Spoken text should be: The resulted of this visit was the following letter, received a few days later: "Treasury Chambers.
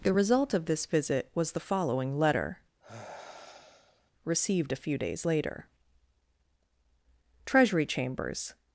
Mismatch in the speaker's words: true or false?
true